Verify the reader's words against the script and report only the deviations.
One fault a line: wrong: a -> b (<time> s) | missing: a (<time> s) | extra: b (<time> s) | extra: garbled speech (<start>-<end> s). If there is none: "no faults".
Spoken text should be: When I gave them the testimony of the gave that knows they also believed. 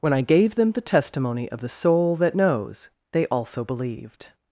wrong: gave -> soul (1.7 s)